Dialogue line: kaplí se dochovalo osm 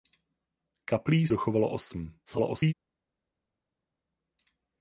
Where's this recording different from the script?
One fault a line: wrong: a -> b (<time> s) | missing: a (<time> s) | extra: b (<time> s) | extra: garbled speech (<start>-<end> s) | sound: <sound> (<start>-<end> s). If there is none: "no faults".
missing: se (1.3 s)
extra: garbled speech (2.3-2.7 s)